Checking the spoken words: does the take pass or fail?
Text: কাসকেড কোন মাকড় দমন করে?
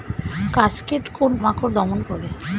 pass